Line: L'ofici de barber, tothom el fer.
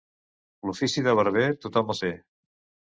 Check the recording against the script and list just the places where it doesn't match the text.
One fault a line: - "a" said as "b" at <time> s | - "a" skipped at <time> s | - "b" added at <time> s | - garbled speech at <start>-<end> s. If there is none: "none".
none